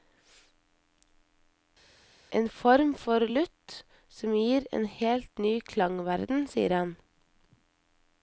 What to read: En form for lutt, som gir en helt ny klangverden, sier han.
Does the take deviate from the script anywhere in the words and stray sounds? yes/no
no